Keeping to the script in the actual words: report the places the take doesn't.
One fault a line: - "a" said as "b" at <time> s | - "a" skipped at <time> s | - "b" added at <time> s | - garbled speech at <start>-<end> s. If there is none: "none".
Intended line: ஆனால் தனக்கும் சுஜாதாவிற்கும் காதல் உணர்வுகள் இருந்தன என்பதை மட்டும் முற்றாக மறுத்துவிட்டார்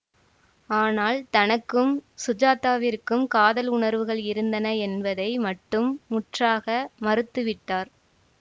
none